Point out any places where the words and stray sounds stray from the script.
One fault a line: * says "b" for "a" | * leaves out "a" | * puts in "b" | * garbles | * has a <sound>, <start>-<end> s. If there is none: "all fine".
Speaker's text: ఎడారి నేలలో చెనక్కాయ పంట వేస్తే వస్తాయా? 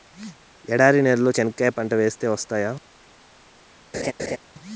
* has a laugh, 3.9-4.4 s